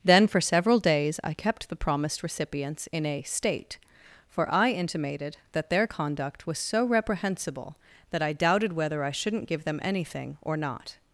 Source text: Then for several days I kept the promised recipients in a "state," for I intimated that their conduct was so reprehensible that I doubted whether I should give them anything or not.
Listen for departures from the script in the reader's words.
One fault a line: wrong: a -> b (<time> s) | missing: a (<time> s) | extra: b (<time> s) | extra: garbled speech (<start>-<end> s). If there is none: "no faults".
wrong: should -> shouldn't (9.1 s)